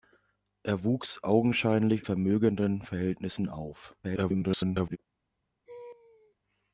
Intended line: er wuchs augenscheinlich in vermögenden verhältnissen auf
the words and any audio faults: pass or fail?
fail